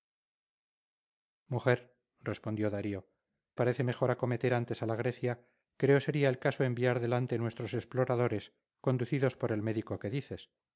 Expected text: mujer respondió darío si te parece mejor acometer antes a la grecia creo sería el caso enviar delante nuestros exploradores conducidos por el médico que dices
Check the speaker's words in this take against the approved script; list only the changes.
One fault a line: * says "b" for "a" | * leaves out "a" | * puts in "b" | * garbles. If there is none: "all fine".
* leaves out "si te"